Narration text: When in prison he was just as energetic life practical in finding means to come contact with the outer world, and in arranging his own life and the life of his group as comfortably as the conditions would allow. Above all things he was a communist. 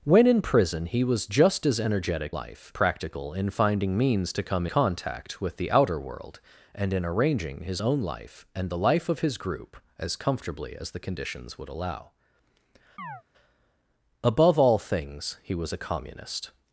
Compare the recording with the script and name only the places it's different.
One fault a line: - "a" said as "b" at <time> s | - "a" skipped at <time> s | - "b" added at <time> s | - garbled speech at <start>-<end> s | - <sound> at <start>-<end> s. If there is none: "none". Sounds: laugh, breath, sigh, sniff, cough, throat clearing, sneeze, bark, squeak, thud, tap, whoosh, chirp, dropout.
- chirp at 13.0-13.2 s